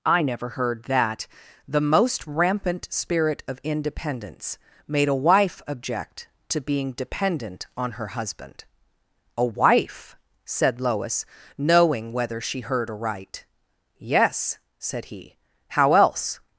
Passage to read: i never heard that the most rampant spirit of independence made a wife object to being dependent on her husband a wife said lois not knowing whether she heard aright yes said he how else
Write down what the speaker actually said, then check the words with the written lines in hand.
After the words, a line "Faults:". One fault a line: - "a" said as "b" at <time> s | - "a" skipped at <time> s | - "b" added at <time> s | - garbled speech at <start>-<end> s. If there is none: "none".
i never heard that the most rampant spirit of independence made a wife object to being dependent on her husband a wife said lois knowing whether she heard aright yes said he how else
Faults:
- "not" skipped at 11.3 s